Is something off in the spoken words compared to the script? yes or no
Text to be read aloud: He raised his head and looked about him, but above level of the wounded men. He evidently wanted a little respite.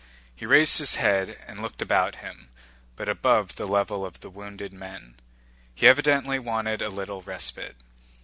yes